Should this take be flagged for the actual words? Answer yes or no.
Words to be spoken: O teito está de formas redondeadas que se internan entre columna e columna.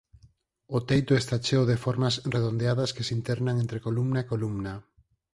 yes